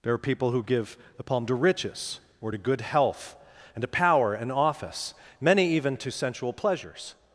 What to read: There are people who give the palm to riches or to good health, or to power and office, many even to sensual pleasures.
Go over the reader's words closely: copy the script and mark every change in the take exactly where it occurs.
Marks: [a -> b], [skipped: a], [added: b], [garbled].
There are people who give the palm to riches or to good health, [or -> and] to power and office, many even to sensual pleasures.